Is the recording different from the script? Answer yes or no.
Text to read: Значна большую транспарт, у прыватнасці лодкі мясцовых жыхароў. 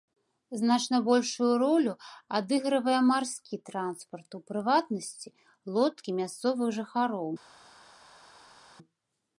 yes